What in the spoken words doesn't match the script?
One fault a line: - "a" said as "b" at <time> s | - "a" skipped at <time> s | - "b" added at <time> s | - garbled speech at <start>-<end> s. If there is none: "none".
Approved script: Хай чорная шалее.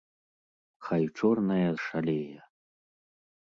none